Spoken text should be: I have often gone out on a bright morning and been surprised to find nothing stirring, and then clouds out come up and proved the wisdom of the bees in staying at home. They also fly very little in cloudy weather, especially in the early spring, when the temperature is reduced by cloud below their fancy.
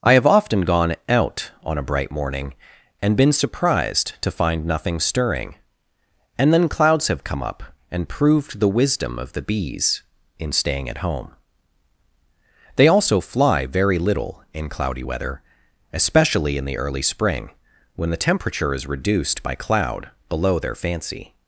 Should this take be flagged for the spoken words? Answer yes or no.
yes